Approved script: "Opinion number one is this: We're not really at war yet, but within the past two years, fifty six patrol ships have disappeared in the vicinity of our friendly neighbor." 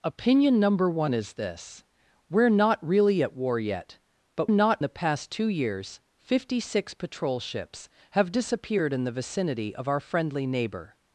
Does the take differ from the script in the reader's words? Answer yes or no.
yes